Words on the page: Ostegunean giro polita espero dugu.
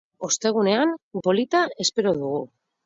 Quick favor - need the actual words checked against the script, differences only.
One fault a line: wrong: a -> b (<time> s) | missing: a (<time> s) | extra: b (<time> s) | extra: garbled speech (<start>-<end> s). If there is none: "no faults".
missing: giro (0.9 s)